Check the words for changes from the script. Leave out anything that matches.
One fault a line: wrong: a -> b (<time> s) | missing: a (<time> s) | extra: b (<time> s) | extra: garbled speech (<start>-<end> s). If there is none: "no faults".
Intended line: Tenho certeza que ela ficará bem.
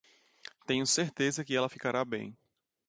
no faults